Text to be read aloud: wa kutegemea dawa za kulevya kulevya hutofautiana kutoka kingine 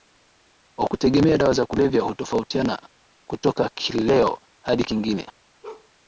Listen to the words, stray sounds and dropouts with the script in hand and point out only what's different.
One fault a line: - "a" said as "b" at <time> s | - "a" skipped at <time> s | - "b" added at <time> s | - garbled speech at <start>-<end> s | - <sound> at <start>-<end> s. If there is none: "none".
- "kulevya" skipped at 2.0 s
- "kileo hadi" added at 3.7 s
- bark at 5.6-5.9 s